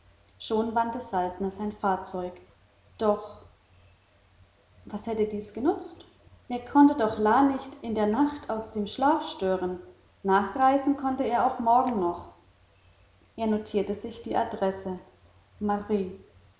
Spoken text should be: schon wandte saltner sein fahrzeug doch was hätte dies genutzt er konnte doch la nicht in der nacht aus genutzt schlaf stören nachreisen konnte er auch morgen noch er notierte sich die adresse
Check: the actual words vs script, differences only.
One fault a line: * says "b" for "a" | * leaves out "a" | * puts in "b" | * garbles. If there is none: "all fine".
* says "dem" for "genutzt"